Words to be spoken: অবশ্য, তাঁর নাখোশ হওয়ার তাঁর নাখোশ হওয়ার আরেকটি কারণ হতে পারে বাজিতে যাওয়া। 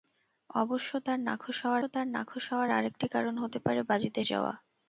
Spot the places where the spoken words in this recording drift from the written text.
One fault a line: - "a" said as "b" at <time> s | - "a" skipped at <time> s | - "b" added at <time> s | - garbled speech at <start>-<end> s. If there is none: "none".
none